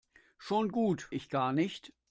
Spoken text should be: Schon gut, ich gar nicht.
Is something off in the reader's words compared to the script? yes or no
no